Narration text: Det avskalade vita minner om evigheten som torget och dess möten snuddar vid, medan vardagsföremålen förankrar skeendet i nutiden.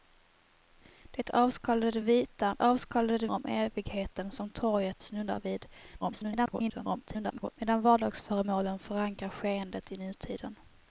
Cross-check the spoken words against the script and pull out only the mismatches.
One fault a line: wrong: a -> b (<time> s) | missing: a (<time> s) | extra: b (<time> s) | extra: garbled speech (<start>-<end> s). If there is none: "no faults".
wrong: minner -> avskalade (2.6 s)
missing: och dess möten (5.0 s)
extra: garbled speech (6.0-7.5 s)